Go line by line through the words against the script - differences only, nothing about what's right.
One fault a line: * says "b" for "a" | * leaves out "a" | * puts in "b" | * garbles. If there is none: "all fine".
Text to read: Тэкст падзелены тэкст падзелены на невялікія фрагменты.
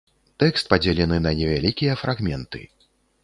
* leaves out "тэкст падзелены"